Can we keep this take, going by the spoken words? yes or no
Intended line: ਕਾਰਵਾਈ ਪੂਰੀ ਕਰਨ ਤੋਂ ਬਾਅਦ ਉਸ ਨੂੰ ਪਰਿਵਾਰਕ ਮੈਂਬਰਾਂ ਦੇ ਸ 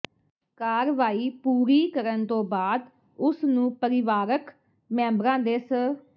yes